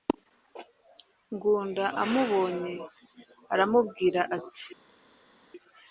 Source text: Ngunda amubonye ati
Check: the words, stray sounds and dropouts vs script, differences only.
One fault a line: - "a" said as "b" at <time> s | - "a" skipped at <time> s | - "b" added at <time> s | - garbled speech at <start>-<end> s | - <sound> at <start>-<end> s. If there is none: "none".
- "aramubwira" added at 3.5 s